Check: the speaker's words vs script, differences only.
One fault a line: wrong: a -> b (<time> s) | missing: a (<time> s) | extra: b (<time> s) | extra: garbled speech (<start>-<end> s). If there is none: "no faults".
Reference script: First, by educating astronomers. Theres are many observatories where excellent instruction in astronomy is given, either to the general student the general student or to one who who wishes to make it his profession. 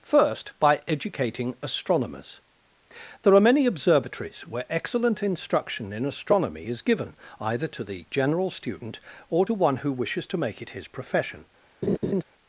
wrong: Theres -> There (3.2 s)
missing: the general student (9.0 s)
missing: who (9.9 s)